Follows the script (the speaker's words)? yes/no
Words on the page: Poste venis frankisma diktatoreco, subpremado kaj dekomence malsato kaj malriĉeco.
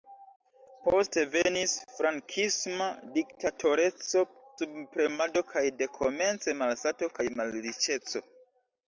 yes